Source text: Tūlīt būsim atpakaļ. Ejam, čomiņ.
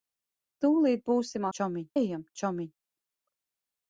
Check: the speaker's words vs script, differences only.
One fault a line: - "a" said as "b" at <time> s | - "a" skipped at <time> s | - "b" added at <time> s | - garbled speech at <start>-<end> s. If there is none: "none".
- "atpakaļ" said as "čomiņ" at 1.6 s